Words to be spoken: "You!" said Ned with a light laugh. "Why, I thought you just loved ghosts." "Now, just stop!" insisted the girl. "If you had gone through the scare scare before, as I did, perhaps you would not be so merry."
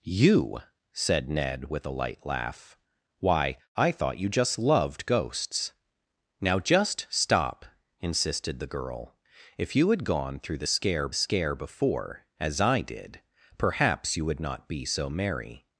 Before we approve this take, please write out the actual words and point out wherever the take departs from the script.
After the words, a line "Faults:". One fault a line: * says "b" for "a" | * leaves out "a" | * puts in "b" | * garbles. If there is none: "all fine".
"You!" said Ned with a light laugh. "Why, I thought you just loved ghosts." "Now, just stop!" insisted the girl. "If you had gone through the scare scare before, as I did, perhaps you would not be so merry."
Faults:
all fine